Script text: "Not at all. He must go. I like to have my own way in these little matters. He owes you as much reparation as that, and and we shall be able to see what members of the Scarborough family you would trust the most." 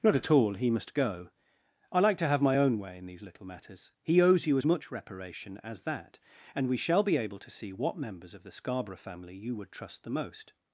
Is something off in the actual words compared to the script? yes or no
yes